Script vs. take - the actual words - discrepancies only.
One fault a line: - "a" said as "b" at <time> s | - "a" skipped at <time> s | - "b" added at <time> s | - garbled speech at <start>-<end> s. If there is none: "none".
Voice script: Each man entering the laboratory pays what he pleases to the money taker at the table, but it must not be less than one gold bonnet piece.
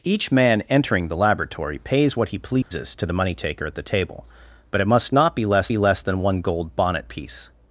- "be less" added at 5.7 s